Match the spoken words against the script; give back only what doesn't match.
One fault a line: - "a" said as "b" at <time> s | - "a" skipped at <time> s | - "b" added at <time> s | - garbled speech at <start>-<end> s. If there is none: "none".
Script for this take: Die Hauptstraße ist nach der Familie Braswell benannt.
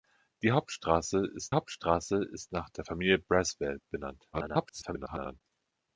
- "Hauptstraße ist" added at 1.5 s
- garbled speech at 4.3-5.4 s